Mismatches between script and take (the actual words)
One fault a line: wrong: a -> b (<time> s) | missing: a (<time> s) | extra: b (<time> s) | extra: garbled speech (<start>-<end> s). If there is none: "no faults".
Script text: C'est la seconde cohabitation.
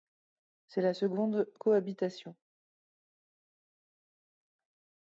no faults